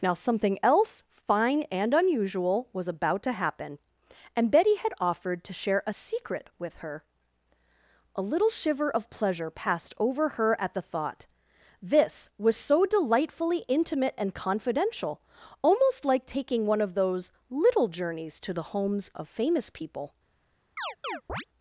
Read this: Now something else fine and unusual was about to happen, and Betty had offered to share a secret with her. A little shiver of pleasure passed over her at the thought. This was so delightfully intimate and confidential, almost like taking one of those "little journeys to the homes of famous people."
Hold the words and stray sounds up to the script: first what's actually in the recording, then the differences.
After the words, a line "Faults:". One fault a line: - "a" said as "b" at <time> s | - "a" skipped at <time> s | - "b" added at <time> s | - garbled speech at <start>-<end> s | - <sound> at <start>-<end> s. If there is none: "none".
Now something else fine and unusual was about to happen, and Betty had offered to share a secret with her. A little shiver of pleasure passed over her at the thought. This was so delightfully intimate and confidential, almost like taking one of those "little journeys to the homes of famous people."
Faults:
- chirp at 20.8-21.5 s